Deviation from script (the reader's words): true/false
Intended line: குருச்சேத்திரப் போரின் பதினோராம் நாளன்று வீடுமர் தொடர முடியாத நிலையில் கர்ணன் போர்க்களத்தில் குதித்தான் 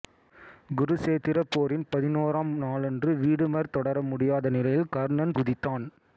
true